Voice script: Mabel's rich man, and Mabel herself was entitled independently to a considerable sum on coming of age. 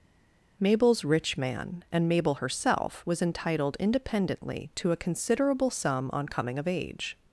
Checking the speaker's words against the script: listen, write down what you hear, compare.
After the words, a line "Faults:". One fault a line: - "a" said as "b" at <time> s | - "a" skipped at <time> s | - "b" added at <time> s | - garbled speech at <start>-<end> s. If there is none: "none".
Mabel's rich man, and Mabel herself was entitled independently to a considerable sum on coming of age.
Faults:
none